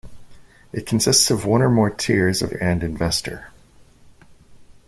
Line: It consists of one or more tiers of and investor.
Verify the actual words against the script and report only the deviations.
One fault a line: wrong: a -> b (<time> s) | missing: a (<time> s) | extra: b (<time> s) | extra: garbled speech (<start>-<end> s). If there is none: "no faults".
no faults